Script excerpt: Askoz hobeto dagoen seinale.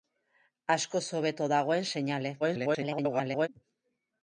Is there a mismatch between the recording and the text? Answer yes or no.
yes